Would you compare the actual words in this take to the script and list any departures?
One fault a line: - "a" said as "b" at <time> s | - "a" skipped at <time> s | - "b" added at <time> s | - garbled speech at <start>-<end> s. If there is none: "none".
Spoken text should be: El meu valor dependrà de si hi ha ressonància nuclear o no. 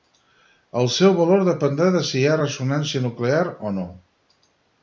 - "meu" said as "seu" at 0.9 s